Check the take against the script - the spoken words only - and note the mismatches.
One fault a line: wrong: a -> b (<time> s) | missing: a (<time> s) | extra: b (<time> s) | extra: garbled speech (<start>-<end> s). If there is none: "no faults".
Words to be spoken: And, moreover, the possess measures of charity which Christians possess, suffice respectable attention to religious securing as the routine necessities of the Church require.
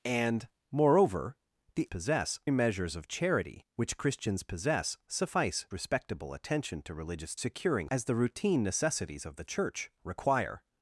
no faults